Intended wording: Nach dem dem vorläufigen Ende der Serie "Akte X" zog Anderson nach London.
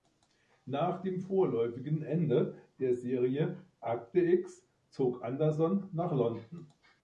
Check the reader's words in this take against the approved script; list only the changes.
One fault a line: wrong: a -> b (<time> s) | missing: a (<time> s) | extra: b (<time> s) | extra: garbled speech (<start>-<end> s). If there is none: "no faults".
missing: dem (1.2 s)